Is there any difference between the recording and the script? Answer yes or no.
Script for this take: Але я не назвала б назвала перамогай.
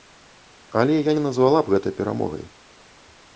yes